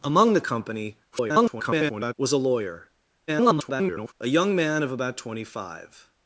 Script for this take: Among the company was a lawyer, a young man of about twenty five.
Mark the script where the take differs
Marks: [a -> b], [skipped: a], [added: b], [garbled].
Among the company [garbled] was a lawyer, [garbled] a young man of about twenty five.